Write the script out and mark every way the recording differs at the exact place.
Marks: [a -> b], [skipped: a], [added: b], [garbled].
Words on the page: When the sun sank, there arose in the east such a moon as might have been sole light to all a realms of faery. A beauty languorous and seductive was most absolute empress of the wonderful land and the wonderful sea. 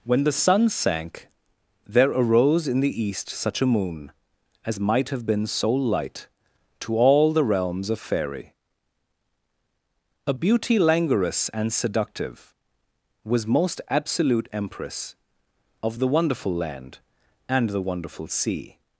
When the sun sank, there arose in the east such a moon as might have been sole light to all [a -> the] realms of faery. A beauty languorous and seductive was most absolute empress of the wonderful land and the wonderful sea.